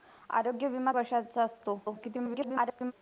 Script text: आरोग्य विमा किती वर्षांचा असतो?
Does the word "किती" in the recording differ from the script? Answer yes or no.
yes